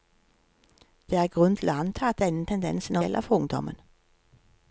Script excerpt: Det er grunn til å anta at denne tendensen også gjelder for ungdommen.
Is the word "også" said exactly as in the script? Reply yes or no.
no